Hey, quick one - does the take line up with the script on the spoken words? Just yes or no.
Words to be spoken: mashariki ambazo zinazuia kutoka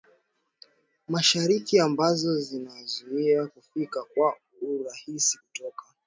no